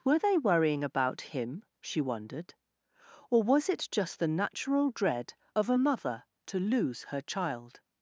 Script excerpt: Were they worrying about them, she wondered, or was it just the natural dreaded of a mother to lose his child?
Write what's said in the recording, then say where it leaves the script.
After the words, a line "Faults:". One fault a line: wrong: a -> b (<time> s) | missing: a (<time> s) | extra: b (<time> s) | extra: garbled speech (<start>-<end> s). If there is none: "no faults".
Were they worrying about him, she wondered, or was it just the natural dread of a mother to lose her child?
Faults:
wrong: them -> him (1.2 s)
wrong: dreaded -> dread (4.9 s)
wrong: his -> her (7.1 s)